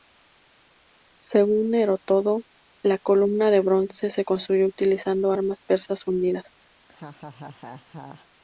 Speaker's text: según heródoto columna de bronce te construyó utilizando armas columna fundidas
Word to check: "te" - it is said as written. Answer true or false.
false